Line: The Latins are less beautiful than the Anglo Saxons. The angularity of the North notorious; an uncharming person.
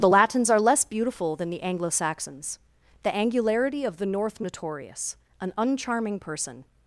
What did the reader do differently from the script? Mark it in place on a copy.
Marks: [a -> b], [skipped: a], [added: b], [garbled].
The Latins are less beautiful than the Anglo Saxons. The angularity of the North notorious; an uncharming person.